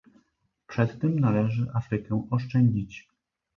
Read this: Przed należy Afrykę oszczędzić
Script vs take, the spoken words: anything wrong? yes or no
yes